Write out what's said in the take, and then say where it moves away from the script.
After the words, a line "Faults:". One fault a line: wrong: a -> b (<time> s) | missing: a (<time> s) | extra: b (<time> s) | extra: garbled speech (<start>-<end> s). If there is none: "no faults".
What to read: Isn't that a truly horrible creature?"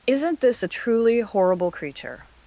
Isn't this a truly horrible creature?"
Faults:
wrong: that -> this (0.4 s)